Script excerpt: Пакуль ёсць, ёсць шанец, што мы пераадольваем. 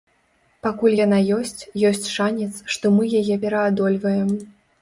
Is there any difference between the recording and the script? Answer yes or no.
yes